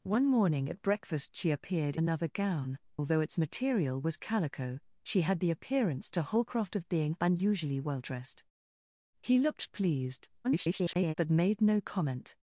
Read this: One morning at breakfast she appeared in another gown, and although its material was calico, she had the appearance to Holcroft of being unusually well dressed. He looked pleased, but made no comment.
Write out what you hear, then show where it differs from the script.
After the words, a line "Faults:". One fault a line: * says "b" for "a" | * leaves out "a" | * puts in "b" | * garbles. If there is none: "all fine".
One morning at breakfast she appeared another gown, although its material was calico, she had the appearance to Holcroft of being unusually well dressed. He looked pleased, [garbled] but made no comment.
Faults:
* leaves out "in"
* leaves out "and"
* garbles